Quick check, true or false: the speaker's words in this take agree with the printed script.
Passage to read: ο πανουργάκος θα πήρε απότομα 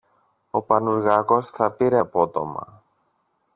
true